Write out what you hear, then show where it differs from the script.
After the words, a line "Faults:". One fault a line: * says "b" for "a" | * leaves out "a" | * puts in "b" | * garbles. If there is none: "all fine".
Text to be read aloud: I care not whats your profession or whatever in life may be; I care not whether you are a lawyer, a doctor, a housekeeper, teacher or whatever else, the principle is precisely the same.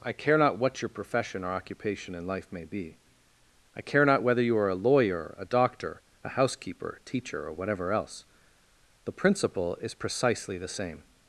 I care not what your profession or occupation in life may be; I care not whether you are a lawyer, a doctor, a housekeeper, teacher or whatever else, the principle is precisely the same.
Faults:
* says "what" for "whats"
* says "occupation" for "whatever"